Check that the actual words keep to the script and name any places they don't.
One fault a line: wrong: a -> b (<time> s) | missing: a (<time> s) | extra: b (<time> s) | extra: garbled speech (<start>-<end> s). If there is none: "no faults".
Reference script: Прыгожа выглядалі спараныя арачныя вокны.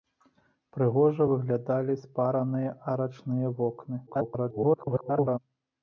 extra: garbled speech (4.1-5.4 s)